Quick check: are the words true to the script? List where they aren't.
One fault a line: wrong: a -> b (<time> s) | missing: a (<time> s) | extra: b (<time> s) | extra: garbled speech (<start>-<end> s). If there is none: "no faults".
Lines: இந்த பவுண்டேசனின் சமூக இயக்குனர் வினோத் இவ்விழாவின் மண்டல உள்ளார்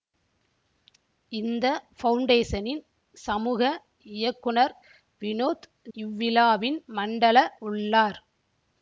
no faults